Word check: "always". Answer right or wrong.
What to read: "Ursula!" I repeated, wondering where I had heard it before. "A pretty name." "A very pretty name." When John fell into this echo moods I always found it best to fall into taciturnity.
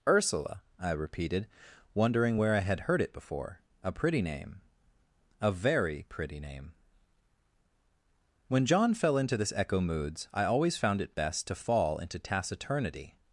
right